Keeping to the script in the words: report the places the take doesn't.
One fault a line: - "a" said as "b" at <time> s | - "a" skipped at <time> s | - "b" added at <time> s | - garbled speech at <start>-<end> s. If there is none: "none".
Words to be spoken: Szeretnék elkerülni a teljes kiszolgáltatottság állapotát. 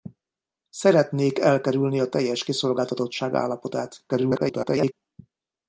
- garbled speech at 4.1-4.9 s